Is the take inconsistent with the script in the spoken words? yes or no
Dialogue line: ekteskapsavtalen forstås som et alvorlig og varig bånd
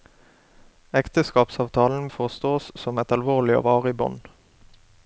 no